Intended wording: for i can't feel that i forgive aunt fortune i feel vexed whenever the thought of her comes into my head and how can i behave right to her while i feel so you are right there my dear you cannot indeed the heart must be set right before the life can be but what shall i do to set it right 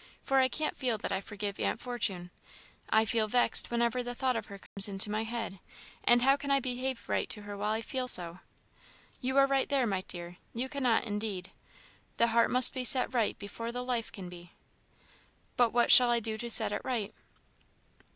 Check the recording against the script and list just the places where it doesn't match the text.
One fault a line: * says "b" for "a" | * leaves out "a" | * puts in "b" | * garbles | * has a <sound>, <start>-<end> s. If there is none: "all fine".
* has a dropout, 4.7-4.8 s